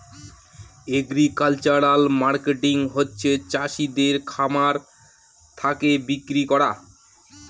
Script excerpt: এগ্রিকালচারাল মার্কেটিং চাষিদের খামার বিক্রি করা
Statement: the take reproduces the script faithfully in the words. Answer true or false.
false